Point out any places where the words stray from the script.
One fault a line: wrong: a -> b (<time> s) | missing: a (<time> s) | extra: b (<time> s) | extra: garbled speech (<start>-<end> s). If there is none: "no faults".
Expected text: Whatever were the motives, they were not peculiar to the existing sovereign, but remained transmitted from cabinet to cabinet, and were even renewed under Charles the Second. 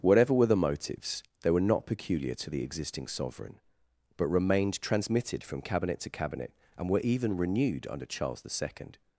no faults